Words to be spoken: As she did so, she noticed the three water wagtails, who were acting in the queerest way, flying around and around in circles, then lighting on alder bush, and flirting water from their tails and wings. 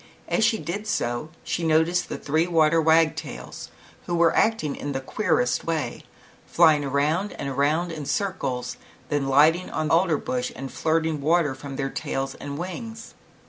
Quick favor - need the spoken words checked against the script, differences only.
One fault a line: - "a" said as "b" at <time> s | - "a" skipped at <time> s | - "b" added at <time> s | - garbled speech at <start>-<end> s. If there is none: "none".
none